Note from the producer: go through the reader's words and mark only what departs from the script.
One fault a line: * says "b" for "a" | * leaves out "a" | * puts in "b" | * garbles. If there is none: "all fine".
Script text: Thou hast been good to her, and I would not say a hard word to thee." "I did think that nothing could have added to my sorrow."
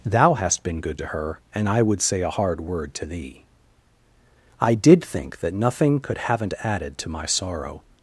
* leaves out "not"
* says "haven't" for "have"